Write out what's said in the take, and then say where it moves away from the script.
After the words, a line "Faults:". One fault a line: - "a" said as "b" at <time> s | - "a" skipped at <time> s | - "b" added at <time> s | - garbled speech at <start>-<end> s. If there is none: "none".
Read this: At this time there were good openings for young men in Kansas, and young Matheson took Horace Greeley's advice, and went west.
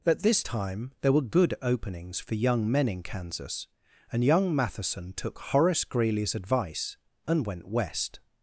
At this time there were good openings for young men in Kansas, and young Matheson took Horace Greeley's advice, and went west.
Faults:
none